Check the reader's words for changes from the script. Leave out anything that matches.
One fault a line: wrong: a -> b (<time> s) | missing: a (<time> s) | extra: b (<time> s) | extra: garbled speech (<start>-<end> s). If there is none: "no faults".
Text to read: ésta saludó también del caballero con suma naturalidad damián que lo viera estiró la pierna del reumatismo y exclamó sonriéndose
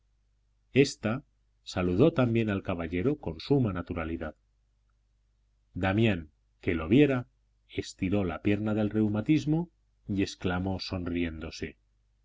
wrong: del -> al (2.5 s)